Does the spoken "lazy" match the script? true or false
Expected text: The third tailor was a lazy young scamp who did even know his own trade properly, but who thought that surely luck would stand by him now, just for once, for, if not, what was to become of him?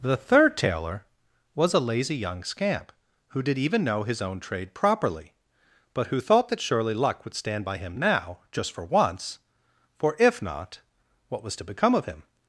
true